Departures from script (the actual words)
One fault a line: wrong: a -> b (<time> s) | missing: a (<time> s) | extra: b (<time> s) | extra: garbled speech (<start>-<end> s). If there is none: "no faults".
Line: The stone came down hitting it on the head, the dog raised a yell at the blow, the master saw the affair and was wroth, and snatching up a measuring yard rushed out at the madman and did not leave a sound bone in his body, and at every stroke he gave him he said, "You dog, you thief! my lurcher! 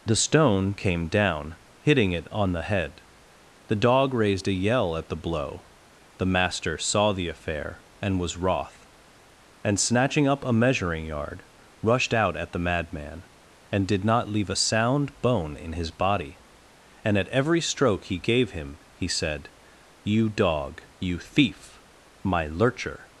no faults